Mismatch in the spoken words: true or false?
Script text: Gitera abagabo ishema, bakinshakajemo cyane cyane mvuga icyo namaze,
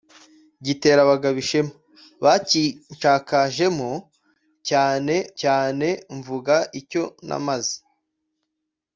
false